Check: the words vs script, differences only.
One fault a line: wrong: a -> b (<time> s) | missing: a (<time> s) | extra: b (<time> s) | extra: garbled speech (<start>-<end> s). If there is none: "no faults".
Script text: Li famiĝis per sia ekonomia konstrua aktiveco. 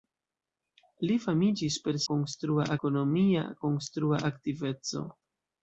wrong: sia -> konstrua (2.1 s)